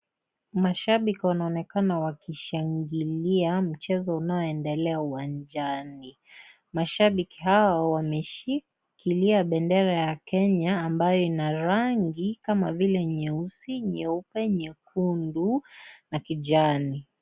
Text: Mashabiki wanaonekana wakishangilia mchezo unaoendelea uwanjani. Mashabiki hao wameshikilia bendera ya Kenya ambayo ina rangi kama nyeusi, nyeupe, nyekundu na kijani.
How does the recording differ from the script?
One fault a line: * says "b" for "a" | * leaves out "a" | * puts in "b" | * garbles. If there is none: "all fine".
* puts in "vile"